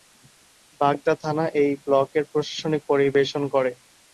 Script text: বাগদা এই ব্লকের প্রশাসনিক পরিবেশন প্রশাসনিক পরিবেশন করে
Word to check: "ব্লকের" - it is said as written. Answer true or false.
true